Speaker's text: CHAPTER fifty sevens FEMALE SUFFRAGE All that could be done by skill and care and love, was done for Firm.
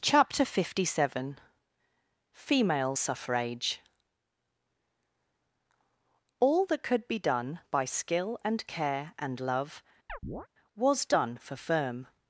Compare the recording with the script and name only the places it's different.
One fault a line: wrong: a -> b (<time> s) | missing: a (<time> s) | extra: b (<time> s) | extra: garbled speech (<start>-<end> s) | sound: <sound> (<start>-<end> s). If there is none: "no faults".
wrong: sevens -> seven (0.9 s)
sound: chirp (10.1-10.5 s)